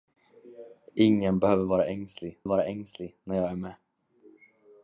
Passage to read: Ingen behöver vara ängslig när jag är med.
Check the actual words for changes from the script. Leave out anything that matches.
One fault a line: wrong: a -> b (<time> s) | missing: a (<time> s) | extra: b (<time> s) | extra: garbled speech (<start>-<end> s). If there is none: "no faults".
extra: vara ängslig (2.4 s)